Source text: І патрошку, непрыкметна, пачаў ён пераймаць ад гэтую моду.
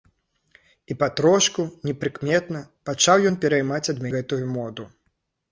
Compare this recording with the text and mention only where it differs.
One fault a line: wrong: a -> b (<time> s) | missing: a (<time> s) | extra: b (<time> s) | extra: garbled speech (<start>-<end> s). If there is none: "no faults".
no faults